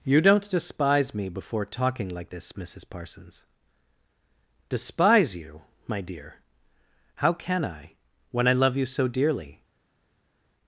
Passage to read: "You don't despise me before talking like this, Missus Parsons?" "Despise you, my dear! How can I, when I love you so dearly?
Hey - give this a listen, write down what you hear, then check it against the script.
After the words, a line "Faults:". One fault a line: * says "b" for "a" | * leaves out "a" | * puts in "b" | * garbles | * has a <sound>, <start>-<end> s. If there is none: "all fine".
"You don't despise me before talking like this, Missus Parsons?" "Despise you, my dear! How can I, when I love you so dearly?
Faults:
all fine